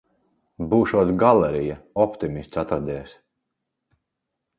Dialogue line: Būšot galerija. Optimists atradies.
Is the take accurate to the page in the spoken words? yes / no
yes